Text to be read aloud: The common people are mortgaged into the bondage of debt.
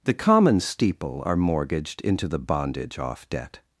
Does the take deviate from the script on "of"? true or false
true